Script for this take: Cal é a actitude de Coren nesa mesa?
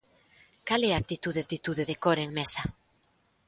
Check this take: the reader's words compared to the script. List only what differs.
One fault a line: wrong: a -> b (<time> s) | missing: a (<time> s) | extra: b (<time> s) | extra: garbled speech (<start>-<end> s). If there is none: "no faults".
extra: actitude (1.4 s)
missing: nesa (2.3 s)